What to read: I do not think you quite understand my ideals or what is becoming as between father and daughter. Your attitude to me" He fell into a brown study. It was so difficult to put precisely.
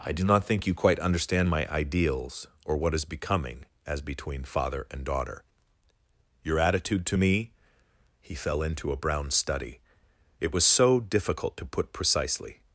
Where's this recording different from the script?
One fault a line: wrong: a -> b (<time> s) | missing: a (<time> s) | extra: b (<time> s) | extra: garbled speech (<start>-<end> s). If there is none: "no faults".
no faults